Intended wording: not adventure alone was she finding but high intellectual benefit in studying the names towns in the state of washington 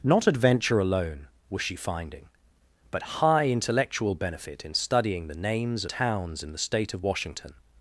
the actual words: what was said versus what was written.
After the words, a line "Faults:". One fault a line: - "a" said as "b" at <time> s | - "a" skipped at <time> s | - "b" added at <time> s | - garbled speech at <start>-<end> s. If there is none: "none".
not adventure alone was she finding but high intellectual benefit in studying the names towns in the state of washington
Faults:
none